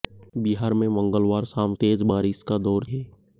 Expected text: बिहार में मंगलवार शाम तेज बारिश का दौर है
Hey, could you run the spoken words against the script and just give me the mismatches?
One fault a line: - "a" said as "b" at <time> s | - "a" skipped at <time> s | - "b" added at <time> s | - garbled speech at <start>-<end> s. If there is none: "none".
none